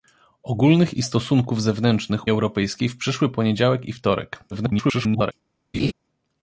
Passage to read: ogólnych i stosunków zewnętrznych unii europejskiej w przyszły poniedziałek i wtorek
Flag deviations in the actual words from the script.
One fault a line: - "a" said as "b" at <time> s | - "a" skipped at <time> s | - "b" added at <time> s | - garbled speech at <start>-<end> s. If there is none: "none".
- "unii" skipped at 2.3 s
- garbled speech at 4.5-5.3 s